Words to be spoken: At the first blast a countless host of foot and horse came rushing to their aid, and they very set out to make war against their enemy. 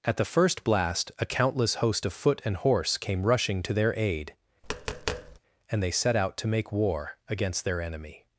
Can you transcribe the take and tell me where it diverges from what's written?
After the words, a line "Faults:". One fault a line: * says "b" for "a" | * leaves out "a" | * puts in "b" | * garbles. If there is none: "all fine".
At the first blast a countless host of foot and horse came rushing to their aid, and they set out to make war against their enemy.
Faults:
* leaves out "very"